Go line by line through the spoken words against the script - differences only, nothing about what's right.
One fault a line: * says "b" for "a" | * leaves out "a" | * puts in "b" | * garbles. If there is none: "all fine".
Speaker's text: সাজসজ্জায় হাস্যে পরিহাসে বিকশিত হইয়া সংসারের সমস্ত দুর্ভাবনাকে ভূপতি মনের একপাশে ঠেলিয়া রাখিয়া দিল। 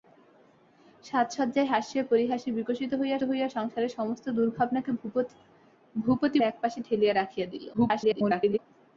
* puts in "হইয়া"
* leaves out "মনের"
* garbles